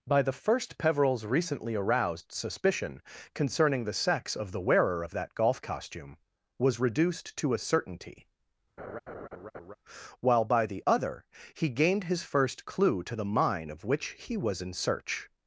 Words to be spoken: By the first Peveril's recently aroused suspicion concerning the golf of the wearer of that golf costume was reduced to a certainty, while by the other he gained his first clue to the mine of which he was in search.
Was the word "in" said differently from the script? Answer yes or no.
no